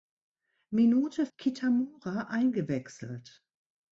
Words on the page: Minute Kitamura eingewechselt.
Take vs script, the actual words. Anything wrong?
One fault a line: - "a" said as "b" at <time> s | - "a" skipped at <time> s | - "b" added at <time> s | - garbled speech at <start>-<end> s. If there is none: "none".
none